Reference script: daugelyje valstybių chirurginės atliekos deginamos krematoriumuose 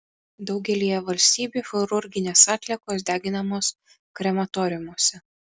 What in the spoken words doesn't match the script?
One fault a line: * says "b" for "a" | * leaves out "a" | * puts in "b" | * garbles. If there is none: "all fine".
all fine